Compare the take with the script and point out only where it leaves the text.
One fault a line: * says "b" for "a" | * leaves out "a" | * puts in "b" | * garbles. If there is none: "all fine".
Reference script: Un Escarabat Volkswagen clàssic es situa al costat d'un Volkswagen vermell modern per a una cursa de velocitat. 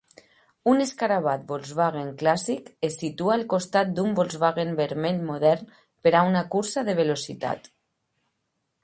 all fine